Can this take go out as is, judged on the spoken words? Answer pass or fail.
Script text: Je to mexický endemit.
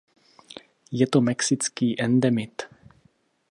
pass